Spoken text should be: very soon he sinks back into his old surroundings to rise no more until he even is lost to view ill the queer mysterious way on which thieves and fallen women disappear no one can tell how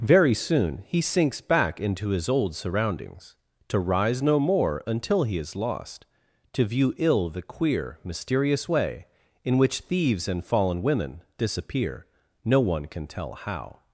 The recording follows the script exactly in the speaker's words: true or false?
false